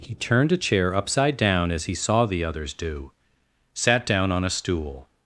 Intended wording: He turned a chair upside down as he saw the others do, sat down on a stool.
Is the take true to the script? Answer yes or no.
yes